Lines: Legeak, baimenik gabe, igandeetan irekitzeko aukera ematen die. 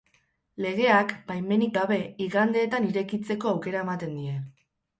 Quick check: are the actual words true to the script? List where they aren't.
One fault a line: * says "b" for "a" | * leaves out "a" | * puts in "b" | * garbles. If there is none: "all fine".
all fine